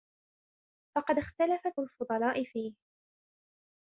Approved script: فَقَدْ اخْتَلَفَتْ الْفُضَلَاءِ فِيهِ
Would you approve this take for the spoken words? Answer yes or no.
yes